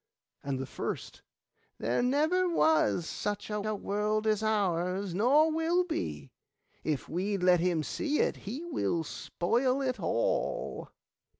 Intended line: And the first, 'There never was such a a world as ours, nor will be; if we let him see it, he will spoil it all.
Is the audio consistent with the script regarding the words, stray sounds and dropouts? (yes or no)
yes